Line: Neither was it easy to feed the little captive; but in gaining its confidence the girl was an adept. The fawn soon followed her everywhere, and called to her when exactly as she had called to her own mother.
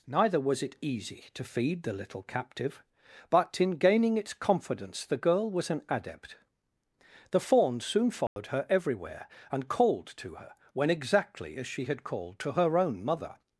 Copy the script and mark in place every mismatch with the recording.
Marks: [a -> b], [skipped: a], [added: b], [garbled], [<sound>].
Neither was it easy to feed the little captive; but in gaining its confidence the girl was an adept. The fawn soon followed [dropout] her everywhere, and called to her when exactly as she had called to her own mother.